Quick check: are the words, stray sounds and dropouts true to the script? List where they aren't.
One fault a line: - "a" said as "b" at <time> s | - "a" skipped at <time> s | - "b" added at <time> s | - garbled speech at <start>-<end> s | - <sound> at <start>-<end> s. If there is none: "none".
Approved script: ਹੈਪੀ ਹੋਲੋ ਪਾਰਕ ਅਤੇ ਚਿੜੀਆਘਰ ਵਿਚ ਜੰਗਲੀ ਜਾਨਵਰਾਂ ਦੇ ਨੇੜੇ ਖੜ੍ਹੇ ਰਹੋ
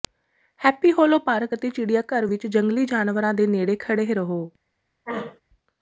- throat clearing at 5.1-5.4 s